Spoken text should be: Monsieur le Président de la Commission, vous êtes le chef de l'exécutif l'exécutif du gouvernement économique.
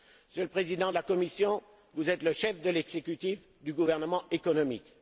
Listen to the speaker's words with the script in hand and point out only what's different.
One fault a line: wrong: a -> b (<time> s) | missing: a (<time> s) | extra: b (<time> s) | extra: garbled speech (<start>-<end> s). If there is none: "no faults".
missing: l'exécutif (3.5 s)